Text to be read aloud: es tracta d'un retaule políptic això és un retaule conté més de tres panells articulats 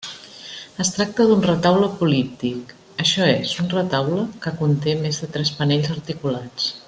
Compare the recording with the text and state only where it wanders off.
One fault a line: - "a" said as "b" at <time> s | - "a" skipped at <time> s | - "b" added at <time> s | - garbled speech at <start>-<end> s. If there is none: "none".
- "que" added at 4.4 s